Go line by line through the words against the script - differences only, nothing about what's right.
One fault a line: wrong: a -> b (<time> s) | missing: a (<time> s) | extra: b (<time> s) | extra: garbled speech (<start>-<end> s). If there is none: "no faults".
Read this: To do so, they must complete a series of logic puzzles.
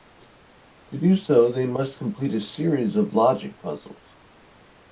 no faults